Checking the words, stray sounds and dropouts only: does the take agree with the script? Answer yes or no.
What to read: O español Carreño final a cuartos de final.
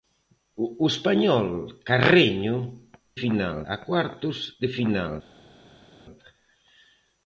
yes